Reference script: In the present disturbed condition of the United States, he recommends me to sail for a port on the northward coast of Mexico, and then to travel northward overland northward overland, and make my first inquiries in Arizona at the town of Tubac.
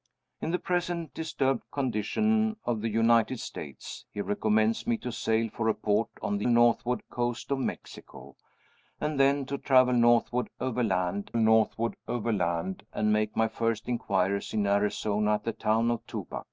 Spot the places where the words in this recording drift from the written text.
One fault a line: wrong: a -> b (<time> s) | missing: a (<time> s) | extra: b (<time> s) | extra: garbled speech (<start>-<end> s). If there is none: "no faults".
no faults